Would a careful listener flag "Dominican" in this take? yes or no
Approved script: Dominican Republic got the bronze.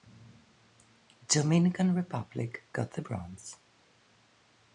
no